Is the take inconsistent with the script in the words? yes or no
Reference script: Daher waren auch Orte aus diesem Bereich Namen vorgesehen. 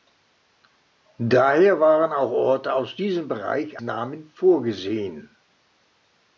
no